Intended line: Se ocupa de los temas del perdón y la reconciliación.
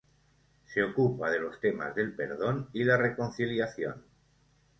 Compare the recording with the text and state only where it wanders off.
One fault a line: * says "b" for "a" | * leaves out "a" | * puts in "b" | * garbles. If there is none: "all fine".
all fine